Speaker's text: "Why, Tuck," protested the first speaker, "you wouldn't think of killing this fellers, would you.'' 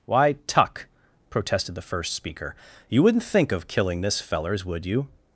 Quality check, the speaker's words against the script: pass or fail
pass